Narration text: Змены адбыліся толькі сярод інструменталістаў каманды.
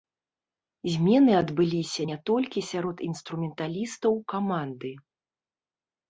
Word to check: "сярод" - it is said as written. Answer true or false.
true